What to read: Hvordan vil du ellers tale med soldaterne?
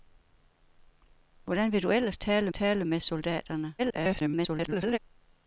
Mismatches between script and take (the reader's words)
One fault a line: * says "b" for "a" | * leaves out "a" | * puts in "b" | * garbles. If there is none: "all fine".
* puts in "tale"
* garbles